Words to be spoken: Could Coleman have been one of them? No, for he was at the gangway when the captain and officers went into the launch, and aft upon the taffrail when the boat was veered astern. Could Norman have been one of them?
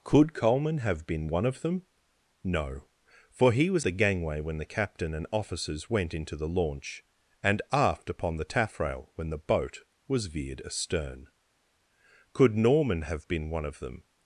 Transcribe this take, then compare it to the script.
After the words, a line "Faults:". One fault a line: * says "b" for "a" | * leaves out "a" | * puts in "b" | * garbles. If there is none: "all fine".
Could Coleman have been one of them? No, for he was the gangway when the captain and officers went into the launch, and aft upon the taffrail when the boat was veered astern. Could Norman have been one of them?
Faults:
* leaves out "at"